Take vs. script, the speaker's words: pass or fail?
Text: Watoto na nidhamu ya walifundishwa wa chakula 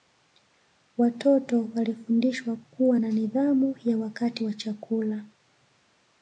fail